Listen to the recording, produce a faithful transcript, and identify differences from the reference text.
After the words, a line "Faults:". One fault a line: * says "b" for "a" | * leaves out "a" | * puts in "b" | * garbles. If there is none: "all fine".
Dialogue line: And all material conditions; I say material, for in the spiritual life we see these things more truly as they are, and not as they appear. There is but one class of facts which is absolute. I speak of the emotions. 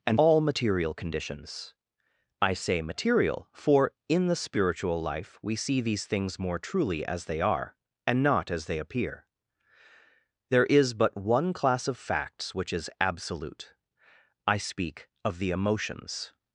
And all material conditions; I say material, for in the spiritual life we see these things more truly as they are, and not as they appear. There is but one class of facts which is absolute. I speak of the emotions.
Faults:
all fine